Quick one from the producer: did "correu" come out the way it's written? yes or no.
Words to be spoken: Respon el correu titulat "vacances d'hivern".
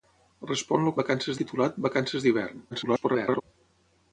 no